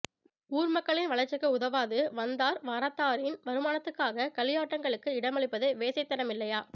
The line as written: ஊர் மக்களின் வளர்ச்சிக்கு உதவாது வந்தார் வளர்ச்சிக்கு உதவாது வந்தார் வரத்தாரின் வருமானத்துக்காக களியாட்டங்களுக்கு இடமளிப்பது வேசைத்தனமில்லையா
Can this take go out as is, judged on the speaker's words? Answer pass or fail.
fail